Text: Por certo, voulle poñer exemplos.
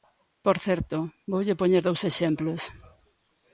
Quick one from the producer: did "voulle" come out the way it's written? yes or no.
yes